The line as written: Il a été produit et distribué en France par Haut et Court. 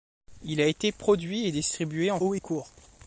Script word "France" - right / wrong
wrong